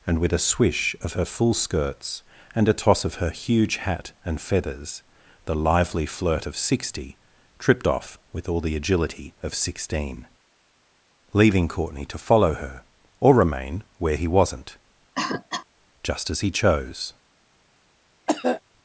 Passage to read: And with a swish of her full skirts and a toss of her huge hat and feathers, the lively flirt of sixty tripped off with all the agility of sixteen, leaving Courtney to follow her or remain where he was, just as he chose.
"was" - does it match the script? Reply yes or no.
no